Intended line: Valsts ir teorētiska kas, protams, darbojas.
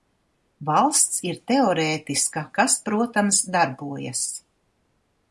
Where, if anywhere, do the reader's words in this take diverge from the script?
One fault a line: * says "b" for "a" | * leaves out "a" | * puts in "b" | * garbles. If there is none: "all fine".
all fine